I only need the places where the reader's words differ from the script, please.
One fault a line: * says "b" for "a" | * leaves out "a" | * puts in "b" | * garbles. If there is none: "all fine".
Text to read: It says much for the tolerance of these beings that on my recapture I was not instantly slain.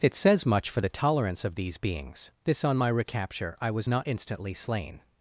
* says "this" for "that"